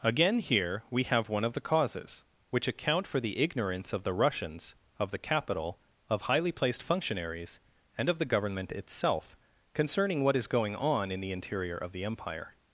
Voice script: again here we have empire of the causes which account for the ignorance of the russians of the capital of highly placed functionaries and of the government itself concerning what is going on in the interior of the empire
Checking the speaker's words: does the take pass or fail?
fail